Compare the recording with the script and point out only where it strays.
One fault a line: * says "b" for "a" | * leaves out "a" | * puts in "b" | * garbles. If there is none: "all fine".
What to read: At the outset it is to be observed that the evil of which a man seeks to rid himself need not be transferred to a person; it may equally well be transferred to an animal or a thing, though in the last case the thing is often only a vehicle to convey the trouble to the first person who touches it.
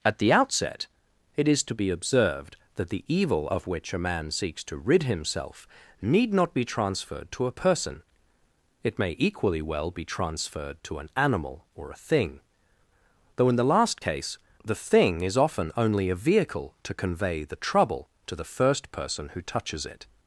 all fine